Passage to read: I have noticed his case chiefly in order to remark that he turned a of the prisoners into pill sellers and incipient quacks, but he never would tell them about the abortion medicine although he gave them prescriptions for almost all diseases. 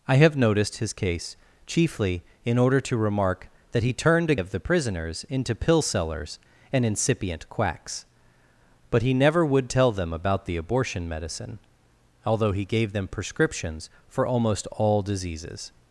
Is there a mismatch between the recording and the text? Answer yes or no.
no